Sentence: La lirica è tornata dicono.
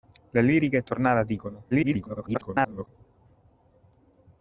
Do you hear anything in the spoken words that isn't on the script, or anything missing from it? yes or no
yes